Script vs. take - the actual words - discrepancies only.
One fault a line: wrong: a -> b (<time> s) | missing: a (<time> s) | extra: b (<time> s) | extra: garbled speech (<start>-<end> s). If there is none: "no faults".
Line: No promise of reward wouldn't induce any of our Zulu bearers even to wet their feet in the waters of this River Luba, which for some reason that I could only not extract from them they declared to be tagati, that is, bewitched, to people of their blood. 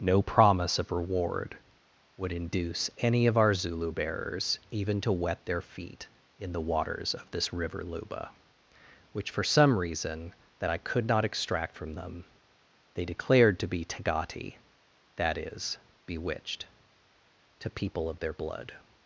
wrong: wouldn't -> would (2.2 s)
missing: only (11.1 s)